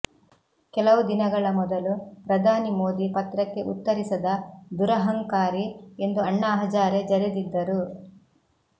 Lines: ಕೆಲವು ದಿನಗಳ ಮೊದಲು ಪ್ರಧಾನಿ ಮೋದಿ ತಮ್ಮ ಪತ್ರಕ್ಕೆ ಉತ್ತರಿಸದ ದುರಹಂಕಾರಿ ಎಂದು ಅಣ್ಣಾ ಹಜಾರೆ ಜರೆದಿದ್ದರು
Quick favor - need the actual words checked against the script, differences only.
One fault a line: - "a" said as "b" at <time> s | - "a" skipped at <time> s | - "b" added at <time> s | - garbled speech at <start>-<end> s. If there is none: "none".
- "ತಮ್ಮ" skipped at 3.1 s